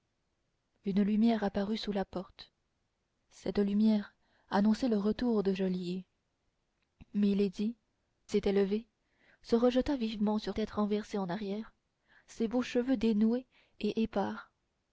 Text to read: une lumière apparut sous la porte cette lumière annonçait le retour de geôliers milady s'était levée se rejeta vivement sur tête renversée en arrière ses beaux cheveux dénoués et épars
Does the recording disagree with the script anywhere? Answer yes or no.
no